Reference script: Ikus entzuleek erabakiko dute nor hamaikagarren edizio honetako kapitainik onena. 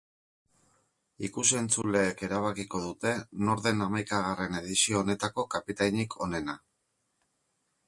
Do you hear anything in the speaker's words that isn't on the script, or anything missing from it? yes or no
yes